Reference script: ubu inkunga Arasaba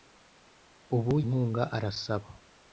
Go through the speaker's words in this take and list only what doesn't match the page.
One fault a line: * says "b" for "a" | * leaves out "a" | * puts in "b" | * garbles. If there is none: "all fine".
all fine